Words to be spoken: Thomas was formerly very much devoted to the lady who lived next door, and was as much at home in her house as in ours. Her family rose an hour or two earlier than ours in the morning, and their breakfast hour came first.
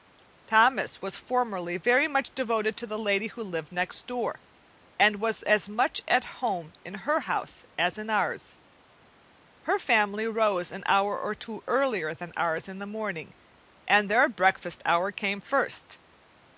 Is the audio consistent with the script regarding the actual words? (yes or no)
yes